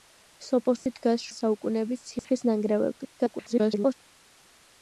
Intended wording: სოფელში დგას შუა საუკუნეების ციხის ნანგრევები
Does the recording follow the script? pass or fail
fail